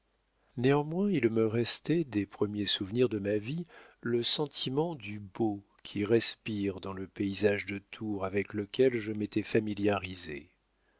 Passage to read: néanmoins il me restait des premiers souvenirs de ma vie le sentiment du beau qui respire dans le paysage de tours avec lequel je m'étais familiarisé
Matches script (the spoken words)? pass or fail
pass